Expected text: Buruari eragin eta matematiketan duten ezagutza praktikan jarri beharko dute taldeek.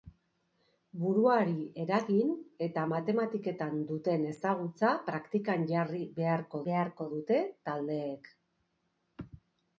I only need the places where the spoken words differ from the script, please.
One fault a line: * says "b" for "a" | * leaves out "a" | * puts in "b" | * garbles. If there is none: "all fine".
* puts in "beharko"